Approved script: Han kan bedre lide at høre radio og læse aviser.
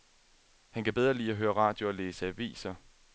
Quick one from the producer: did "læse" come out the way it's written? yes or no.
yes